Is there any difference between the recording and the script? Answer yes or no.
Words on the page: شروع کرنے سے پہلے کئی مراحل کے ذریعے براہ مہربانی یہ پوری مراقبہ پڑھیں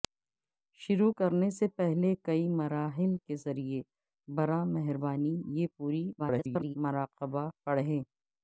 yes